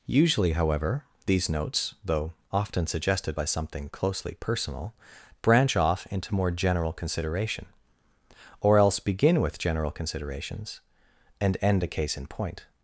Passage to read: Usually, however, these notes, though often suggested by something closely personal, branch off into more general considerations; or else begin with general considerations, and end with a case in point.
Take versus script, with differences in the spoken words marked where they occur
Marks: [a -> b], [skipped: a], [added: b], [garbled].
Usually, however, these notes, though often suggested by something closely personal, branch off into more general [considerations; -> consideration] or else begin with general considerations, and end [skipped: with] a case in point.